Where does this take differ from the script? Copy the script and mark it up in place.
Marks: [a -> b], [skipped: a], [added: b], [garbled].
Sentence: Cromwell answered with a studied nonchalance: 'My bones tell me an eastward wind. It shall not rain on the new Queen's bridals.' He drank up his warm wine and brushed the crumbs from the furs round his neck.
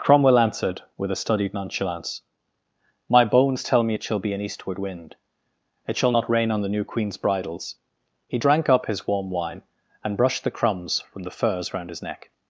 Cromwell answered with a studied nonchalance: 'My bones tell me [added: it shall be] an eastward wind. It shall not rain on the new Queen's bridals.' He drank up his warm wine and brushed the crumbs from the furs round his neck.